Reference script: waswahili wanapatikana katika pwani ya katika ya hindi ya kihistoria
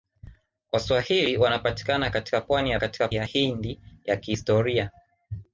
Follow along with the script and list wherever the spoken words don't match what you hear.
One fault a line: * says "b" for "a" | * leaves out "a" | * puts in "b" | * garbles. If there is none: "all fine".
all fine